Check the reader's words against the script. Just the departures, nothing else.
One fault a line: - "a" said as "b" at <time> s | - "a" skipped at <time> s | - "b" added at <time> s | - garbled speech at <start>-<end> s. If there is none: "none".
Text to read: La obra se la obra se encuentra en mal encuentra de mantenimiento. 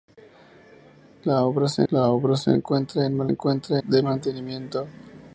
none